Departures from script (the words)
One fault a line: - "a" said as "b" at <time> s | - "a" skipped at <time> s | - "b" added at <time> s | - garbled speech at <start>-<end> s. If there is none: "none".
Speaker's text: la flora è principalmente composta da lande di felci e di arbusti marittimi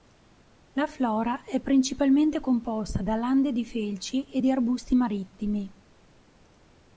none